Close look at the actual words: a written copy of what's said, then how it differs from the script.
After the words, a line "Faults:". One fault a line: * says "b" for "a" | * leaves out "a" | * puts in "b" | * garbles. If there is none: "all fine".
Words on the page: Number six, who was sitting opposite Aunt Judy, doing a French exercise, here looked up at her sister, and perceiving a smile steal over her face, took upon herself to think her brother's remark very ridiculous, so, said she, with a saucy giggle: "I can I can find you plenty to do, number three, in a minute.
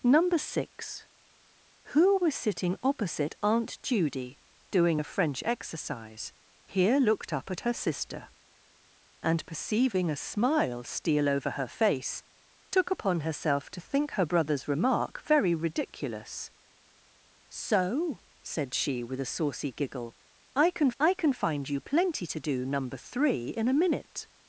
Number six, who was sitting opposite Aunt Judy, doing a French exercise, here looked up at her sister, and perceiving a smile steal over her face, took upon herself to think her brother's remark very ridiculous, so, said she, with a saucy giggle: "I can I can find you plenty to do, number three, in a minute.
Faults:
all fine